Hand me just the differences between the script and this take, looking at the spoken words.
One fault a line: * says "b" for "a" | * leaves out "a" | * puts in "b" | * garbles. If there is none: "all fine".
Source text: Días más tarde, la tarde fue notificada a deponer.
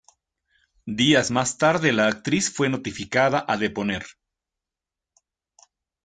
* says "actriz" for "tarde"